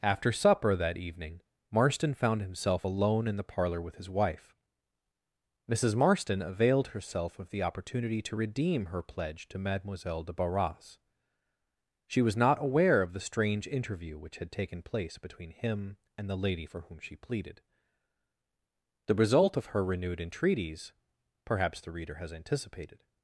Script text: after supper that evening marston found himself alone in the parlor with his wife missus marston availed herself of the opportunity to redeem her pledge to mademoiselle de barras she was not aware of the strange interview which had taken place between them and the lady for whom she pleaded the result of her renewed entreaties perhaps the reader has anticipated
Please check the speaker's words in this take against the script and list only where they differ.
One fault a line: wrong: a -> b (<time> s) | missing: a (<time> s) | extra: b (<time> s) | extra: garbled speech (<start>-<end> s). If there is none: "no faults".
wrong: them -> him (15.5 s)